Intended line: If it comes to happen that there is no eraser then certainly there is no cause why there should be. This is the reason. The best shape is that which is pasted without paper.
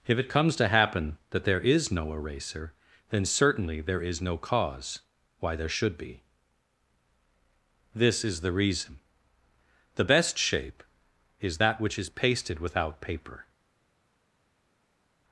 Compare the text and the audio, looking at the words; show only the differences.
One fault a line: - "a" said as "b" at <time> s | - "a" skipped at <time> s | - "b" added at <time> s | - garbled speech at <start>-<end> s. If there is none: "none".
none